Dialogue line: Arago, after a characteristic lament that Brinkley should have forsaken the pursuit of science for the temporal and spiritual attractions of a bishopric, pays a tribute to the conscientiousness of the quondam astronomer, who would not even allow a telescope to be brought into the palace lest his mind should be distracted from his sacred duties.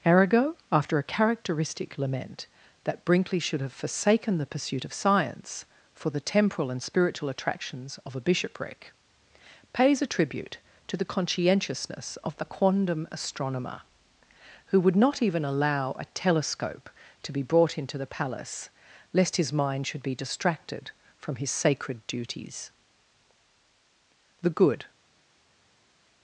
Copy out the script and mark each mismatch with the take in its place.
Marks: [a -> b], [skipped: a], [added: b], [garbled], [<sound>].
Arago, after a characteristic lament that Brinkley should have forsaken the pursuit of science for the temporal and spiritual attractions of a bishopric, pays a tribute to the conscientiousness of the quondam astronomer, who would not even allow a telescope to be brought into the palace lest his mind should be distracted from his sacred duties. [added: The good]